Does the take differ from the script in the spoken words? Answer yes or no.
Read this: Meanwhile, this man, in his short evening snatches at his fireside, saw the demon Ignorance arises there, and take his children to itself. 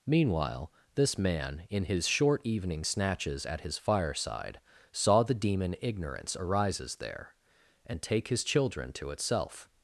no